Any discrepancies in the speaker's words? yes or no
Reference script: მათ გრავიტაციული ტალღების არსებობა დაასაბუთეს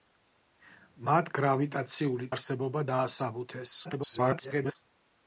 yes